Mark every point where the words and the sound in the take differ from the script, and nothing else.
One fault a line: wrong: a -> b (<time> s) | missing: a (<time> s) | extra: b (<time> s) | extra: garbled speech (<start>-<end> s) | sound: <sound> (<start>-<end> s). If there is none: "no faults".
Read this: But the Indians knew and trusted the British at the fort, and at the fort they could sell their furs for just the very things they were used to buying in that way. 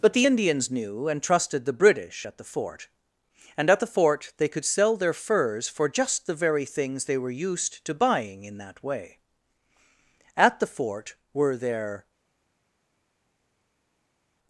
extra: At the fort were their (10.4 s)